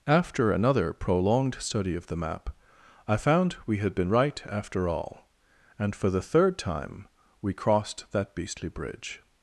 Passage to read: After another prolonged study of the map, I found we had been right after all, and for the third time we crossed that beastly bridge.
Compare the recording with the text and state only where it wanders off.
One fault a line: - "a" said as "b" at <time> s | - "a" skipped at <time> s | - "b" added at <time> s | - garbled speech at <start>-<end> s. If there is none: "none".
none